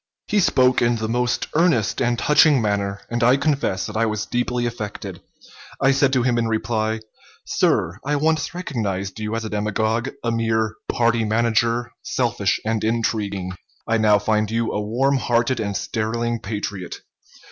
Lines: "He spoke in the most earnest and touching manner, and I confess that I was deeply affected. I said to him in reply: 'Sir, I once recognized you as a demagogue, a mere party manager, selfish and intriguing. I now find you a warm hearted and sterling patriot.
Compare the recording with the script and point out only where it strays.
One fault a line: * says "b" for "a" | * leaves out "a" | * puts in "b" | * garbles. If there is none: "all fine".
all fine